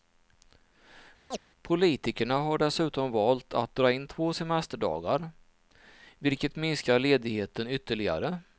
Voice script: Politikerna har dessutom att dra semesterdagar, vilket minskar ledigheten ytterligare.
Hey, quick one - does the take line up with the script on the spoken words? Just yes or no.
no